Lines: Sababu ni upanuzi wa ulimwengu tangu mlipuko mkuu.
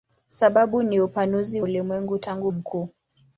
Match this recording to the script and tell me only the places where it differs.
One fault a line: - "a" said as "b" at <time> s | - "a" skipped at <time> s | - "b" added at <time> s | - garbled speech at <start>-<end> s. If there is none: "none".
- "wa" skipped at 1.6 s
- "mlipuko" skipped at 2.5 s